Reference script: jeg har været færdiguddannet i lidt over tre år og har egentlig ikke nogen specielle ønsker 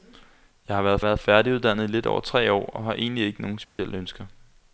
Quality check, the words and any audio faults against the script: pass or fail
fail